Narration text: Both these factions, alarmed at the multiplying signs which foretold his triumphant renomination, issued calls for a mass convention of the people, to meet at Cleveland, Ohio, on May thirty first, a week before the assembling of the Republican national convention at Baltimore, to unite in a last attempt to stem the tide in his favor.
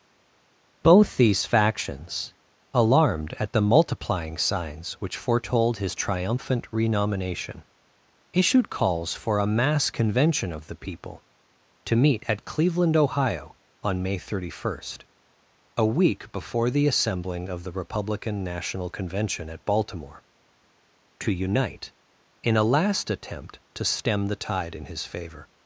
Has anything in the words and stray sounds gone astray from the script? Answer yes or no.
no